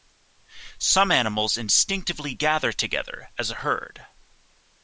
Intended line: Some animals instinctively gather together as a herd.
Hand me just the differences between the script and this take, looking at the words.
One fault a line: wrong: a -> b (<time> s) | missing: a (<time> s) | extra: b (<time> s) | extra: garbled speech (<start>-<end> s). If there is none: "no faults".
no faults